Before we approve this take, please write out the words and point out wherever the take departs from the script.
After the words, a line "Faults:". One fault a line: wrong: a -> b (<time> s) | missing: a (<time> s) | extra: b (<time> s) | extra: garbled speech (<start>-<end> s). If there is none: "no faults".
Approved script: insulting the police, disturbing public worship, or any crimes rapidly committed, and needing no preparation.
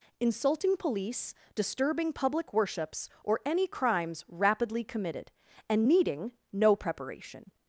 insulting police, disturbing public worships, or any crimes rapidly committed, and needing no preparation.
Faults:
missing: the (0.8 s)
wrong: worship -> worships (2.5 s)